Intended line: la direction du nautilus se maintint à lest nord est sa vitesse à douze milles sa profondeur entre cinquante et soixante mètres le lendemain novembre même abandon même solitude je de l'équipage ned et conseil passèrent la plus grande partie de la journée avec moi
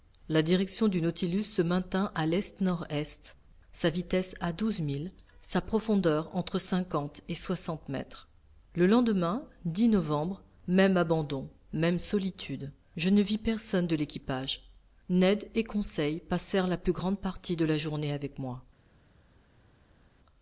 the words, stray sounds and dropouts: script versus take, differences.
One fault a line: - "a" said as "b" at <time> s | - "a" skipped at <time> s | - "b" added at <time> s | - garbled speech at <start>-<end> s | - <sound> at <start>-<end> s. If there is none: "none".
- "ne vis personne" added at 13.1 s